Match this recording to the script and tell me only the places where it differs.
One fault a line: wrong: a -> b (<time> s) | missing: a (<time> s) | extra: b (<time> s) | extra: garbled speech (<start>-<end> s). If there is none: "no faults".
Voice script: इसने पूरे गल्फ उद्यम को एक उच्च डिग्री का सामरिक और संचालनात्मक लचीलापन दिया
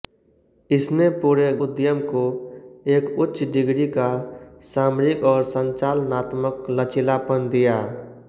missing: गल्फ (1.5 s)